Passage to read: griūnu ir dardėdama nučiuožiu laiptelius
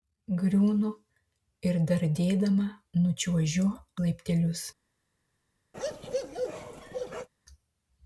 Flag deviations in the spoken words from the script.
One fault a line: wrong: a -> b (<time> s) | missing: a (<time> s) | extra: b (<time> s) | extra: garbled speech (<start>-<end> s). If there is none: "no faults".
no faults